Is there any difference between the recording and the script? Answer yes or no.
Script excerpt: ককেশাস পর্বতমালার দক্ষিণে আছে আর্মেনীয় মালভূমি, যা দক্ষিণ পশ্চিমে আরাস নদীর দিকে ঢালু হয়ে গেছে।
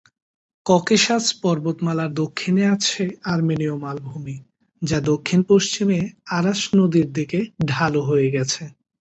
no